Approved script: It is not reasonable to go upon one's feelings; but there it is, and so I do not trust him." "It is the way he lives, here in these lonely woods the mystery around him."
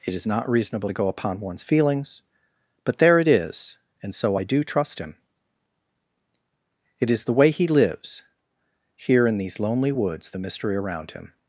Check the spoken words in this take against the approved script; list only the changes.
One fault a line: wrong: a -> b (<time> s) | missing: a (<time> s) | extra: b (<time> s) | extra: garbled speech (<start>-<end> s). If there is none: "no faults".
missing: not (4.6 s)